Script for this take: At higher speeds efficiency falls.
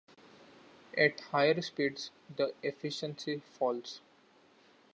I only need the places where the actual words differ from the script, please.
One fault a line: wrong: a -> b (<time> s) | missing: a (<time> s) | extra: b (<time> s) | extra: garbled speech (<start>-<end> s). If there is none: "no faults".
extra: the (2.3 s)